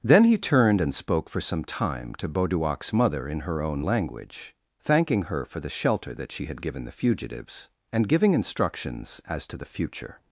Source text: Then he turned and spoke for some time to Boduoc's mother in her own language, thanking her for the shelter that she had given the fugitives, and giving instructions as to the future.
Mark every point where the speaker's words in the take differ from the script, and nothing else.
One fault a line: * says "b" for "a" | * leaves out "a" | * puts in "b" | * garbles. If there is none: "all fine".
all fine